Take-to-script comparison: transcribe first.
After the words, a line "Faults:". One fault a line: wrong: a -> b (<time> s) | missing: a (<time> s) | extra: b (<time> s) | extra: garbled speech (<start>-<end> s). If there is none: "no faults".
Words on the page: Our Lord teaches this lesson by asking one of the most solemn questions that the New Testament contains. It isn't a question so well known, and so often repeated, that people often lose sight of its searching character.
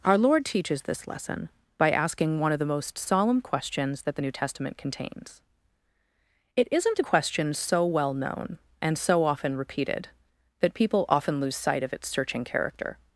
Our Lord teaches this lesson by asking one of the most solemn questions that the New Testament contains. It isn't a question so well known, and so often repeated, that people often lose sight of its searching character.
Faults:
no faults